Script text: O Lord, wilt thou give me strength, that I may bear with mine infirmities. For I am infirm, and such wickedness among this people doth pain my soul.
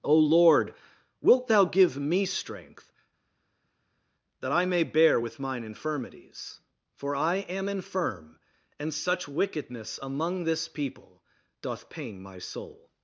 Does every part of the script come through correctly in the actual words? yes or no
yes